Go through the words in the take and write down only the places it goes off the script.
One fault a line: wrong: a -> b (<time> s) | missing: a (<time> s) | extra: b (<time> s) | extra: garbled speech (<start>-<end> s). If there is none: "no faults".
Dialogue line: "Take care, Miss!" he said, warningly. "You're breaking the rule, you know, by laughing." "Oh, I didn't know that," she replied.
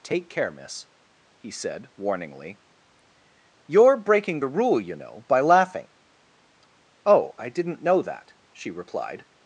no faults